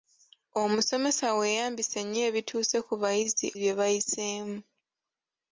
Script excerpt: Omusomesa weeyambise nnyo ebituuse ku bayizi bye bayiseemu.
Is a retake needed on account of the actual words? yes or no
no